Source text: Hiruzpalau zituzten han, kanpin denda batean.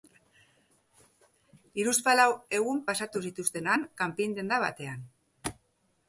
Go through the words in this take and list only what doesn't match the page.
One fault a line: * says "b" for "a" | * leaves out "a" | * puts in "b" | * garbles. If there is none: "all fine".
* puts in "egun pasatu"